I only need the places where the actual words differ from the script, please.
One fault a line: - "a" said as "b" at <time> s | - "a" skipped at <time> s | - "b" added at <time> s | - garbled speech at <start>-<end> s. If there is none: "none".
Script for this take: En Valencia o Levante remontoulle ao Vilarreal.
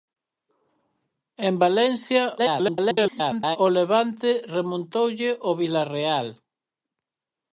- garbled speech at 2.4-3.6 s